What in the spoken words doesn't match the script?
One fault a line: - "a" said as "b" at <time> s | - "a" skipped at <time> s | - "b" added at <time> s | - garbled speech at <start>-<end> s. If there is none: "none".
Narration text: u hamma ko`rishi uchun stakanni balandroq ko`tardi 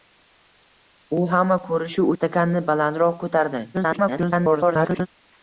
- "uchun" skipped at 2.1 s
- garbled speech at 3.7-5.1 s